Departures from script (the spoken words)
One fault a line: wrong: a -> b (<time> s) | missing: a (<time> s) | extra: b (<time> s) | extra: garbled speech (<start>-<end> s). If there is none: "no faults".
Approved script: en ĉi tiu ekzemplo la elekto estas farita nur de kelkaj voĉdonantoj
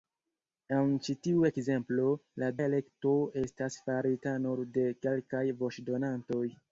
no faults